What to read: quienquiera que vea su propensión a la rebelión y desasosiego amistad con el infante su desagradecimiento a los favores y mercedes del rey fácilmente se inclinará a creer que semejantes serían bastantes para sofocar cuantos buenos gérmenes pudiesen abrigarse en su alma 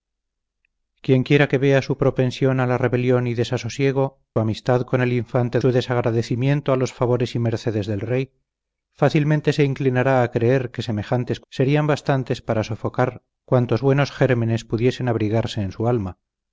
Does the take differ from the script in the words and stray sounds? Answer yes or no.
no